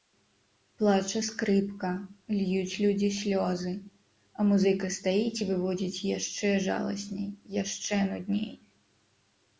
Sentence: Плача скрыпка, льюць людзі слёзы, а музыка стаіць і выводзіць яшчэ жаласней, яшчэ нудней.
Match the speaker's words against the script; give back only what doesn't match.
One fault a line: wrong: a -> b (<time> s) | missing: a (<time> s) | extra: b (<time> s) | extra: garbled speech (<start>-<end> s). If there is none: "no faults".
no faults